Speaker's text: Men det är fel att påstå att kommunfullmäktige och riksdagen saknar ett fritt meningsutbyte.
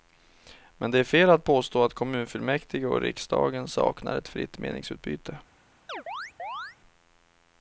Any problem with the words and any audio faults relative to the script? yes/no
yes